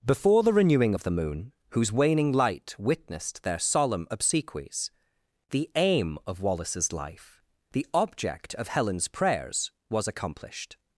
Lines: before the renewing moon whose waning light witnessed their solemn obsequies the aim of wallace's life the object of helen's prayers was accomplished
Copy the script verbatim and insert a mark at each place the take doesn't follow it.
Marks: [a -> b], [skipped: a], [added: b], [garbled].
before the renewing [added: of the] moon whose waning light witnessed their solemn obsequies the aim of wallace's life the object of helen's prayers was accomplished